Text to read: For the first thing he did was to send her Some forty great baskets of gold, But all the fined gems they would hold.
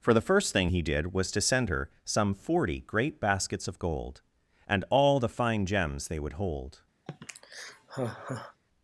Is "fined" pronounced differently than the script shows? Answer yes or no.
yes